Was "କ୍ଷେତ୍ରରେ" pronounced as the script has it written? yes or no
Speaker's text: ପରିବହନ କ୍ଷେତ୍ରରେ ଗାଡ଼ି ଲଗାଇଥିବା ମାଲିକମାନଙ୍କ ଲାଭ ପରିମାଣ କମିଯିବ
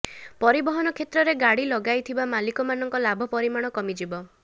yes